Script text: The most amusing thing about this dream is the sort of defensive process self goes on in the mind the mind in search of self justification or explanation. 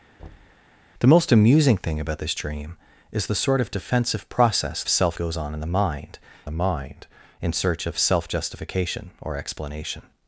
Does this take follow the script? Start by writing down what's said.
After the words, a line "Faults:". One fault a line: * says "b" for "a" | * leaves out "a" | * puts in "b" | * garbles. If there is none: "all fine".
The most amusing thing about this dream is the sort of defensive process self goes on in the mind the mind in search of self justification or explanation.
Faults:
all fine